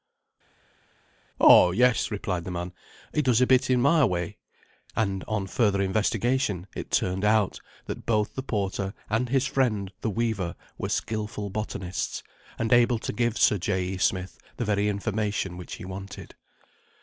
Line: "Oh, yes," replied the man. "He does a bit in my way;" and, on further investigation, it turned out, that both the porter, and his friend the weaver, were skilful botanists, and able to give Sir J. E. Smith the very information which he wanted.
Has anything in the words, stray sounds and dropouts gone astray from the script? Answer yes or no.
no